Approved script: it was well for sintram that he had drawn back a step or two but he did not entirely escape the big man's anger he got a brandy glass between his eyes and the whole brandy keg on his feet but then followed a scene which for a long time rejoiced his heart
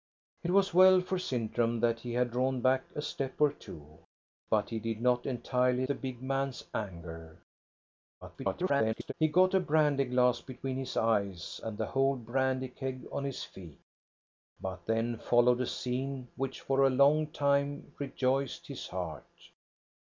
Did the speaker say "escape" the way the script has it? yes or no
no